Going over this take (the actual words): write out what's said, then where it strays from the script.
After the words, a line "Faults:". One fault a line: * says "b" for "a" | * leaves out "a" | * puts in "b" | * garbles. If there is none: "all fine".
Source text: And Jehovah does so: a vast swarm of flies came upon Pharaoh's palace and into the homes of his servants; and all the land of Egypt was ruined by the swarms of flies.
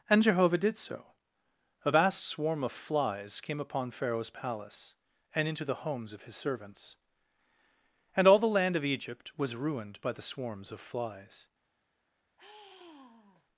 And Jehovah did so: a vast swarm of flies came upon Pharaoh's palace and into the homes of his servants; and all the land of Egypt was ruined by the swarms of flies.
Faults:
* says "did" for "does"